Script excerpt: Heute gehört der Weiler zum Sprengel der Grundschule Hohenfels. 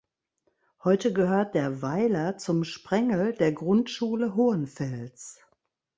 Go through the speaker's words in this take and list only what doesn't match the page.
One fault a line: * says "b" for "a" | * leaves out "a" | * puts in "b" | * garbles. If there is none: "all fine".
all fine